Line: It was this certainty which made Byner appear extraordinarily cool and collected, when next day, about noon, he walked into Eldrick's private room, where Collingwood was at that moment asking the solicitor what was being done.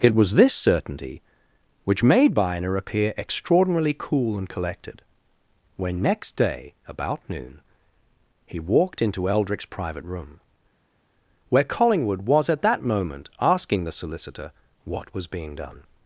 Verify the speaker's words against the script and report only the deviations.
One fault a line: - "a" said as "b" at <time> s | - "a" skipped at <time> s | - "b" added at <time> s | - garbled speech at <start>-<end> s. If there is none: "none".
none